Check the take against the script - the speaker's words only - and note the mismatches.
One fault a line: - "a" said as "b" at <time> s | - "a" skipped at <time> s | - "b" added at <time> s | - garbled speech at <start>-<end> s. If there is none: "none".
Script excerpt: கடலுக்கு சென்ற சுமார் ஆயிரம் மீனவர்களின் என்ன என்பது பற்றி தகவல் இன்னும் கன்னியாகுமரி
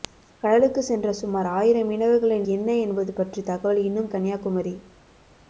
none